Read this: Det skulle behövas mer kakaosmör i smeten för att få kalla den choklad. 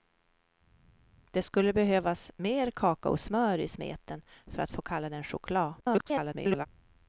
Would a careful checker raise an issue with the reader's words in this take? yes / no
yes